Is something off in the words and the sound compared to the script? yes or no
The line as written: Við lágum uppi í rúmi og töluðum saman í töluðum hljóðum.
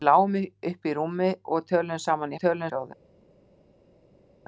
no